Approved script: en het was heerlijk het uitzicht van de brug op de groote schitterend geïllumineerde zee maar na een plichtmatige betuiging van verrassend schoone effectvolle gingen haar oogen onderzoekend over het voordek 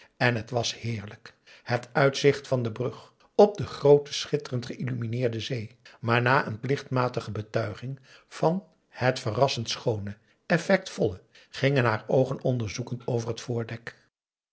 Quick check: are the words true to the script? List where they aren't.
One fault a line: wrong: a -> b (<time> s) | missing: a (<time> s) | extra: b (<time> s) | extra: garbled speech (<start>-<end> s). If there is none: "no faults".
extra: het (8.9 s)